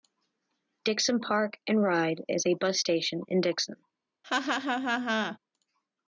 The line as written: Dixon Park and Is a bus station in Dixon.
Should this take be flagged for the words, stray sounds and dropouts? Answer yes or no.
yes